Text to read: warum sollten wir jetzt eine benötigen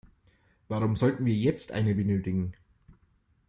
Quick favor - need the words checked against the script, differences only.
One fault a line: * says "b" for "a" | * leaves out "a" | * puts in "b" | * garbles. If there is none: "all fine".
all fine